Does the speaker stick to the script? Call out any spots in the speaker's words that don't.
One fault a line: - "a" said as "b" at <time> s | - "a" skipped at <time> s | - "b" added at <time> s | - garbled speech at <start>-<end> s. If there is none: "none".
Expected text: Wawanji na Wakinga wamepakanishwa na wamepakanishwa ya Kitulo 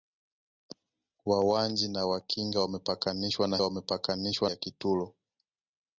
none